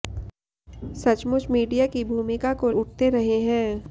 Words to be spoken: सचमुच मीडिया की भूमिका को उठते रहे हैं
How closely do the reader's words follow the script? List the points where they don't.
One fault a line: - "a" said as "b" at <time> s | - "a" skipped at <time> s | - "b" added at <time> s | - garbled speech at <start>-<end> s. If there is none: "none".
none